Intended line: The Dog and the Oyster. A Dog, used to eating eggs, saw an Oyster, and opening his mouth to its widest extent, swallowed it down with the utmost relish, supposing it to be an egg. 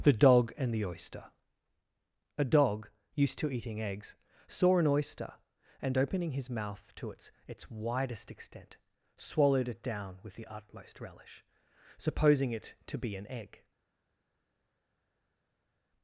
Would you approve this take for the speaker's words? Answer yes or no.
no